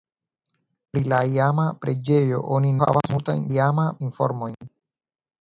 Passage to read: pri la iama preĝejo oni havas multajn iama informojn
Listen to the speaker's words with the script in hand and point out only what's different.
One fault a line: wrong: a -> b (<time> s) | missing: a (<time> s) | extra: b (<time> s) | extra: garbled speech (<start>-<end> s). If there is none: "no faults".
no faults